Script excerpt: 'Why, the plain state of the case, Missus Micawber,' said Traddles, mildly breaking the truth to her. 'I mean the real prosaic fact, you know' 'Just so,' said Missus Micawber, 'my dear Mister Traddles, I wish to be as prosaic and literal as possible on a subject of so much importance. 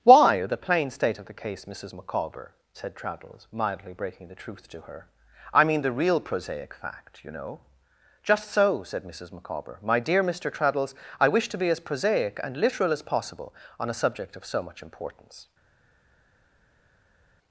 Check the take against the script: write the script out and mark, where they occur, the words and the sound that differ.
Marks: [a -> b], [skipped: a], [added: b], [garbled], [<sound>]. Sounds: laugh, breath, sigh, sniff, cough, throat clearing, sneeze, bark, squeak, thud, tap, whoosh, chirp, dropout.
'Why, the plain state of the case, Missus Micawber,' said Traddles, mildly breaking the truth to her. 'I mean the real prosaic fact, you know' 'Just so,' said Missus Micawber, 'my dear Mister Traddles, I wish to be as prosaic and literal as possible on a subject of so much importance.